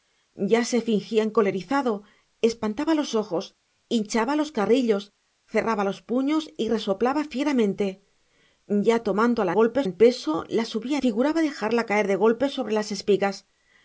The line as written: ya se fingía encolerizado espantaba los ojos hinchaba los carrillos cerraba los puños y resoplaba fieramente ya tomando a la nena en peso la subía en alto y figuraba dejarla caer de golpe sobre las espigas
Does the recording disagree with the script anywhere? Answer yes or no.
yes